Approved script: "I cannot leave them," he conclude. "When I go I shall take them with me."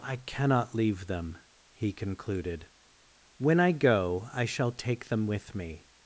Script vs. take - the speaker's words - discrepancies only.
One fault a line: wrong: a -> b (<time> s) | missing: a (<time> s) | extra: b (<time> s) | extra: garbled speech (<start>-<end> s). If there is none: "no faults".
wrong: conclude -> concluded (1.9 s)